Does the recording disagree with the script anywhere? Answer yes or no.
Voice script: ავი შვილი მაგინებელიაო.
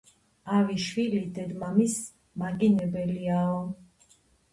yes